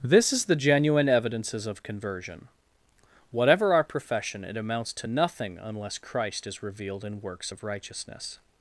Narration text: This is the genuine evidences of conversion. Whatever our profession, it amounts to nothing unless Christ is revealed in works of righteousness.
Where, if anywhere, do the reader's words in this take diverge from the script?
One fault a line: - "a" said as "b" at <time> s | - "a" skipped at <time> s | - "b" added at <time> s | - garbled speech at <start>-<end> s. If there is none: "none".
none